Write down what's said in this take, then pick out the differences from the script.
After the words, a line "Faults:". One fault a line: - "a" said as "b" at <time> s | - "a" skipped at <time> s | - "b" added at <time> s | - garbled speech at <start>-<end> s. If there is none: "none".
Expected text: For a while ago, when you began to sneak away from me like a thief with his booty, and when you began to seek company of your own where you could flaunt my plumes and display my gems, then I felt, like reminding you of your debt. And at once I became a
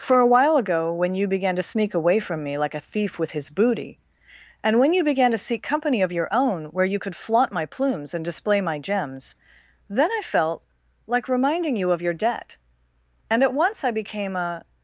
For a while ago, when you began to sneak away from me like a thief with his booty, and when you began to seek company of your own where you could flaunt my plumes and display my gems, then I felt, like reminding you of your debt. And at once I became a
Faults:
none